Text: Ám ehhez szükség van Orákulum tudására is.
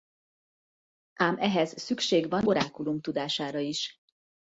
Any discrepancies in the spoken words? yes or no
no